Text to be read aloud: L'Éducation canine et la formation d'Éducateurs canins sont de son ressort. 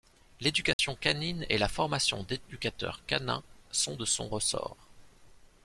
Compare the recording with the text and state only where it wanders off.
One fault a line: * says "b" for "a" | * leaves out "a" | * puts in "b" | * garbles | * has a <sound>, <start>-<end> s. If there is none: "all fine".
* has a dropout, 0.7-0.8 s